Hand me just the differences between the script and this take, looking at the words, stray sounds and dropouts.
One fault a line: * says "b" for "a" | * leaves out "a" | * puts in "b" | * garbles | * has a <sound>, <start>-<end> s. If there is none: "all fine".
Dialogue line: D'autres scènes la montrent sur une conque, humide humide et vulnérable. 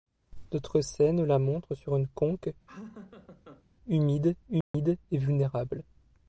* has a laugh, 2.7-3.6 s
* has a dropout, 4.6-4.7 s